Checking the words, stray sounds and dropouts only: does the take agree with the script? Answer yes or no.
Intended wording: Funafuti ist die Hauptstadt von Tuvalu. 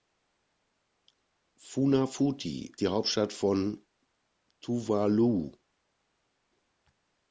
no